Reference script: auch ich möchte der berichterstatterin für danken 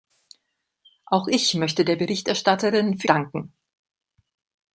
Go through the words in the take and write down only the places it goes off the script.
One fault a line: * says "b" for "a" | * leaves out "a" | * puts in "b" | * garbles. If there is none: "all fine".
all fine